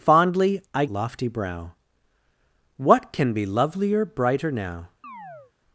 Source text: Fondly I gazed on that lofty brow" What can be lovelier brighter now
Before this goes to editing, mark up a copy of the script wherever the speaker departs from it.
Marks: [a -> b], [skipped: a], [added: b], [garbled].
Fondly I [skipped: gazed on that] lofty brow" What can be lovelier brighter now